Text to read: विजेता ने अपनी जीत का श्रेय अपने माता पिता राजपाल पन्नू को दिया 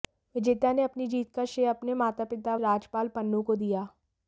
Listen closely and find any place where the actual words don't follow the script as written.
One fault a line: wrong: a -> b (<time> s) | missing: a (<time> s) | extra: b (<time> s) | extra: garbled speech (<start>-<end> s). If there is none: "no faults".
no faults